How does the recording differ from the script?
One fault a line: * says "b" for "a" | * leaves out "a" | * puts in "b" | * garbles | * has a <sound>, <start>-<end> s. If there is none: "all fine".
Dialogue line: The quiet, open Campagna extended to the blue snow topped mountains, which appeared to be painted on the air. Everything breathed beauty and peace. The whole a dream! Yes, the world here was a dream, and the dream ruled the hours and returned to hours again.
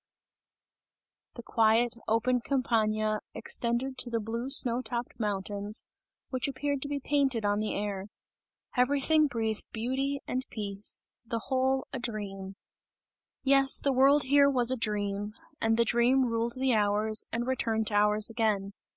all fine